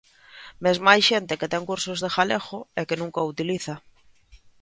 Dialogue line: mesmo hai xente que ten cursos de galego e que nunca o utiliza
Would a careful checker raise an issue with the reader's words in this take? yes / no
no